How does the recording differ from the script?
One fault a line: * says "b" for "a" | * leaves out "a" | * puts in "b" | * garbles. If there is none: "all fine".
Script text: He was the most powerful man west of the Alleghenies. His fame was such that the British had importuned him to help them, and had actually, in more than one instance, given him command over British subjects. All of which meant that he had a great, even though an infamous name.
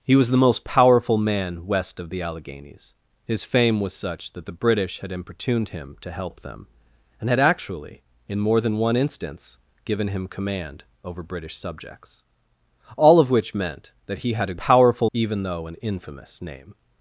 * says "powerful" for "great"